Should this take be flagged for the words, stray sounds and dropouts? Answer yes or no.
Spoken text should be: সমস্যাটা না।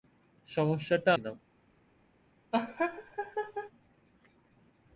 yes